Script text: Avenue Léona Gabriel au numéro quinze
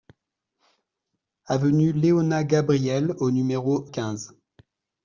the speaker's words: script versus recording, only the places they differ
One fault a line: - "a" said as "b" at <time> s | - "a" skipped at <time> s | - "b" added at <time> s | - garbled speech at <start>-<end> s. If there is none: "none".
none